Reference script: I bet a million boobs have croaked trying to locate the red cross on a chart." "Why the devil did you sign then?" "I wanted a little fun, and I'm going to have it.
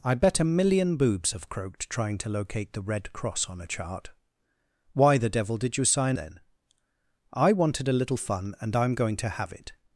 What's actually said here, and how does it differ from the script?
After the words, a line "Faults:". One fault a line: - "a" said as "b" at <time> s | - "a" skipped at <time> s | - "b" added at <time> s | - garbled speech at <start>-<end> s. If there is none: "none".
I bet a million boobs have croaked trying to locate the red cross on a chart." "Why the devil did you sign then?" "I wanted a little fun, and I'm going to have it.
Faults:
none